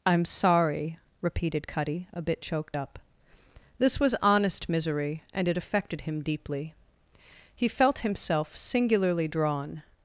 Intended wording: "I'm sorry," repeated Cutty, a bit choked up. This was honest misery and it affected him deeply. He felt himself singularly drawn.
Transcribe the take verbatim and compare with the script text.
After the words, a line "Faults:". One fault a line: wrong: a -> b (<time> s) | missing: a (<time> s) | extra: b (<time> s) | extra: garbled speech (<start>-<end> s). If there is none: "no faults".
"I'm sorry," repeated Cutty, a bit choked up. This was honest misery and it affected him deeply. He felt himself singularly drawn.
Faults:
no faults